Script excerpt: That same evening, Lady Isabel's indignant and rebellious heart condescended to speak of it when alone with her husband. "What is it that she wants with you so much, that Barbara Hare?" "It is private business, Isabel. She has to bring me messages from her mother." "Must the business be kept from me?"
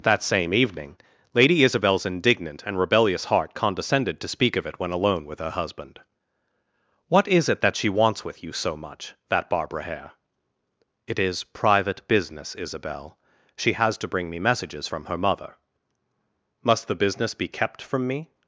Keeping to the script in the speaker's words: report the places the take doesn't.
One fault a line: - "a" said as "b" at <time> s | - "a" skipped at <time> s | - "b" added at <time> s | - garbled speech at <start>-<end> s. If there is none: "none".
none